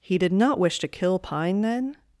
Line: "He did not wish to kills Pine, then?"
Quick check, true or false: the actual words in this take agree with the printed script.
false